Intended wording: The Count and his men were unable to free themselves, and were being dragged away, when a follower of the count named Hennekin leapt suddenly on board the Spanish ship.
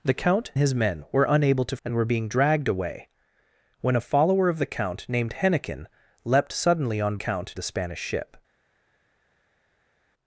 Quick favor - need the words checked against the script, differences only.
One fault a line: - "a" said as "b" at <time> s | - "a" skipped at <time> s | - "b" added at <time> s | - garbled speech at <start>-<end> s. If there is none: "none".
- "and" skipped at 0.5 s
- "free themselves" skipped at 1.8 s
- "board" said as "count" at 7.1 s